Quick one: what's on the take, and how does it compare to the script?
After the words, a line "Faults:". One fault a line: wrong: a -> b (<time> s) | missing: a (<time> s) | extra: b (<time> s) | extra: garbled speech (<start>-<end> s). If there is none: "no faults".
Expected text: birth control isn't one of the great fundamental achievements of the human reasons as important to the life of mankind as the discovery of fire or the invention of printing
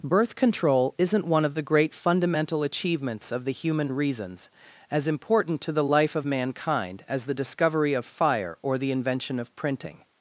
birth control isn't one of the great fundamental achievements of the human reasons as important to the life of mankind as the discovery of fire or the invention of printing
Faults:
no faults